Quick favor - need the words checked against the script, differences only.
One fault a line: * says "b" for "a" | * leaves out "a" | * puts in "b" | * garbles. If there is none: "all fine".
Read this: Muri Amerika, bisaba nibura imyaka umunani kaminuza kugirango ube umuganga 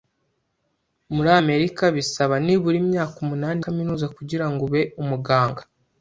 all fine